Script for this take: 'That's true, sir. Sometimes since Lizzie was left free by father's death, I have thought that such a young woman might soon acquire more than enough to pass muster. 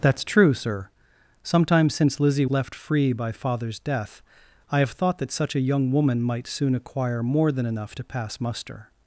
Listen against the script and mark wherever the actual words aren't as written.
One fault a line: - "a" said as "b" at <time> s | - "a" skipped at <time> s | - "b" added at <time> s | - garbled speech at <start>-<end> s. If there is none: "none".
- "was" skipped at 2.5 s